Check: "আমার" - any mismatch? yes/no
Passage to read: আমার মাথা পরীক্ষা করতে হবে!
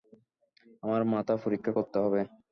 no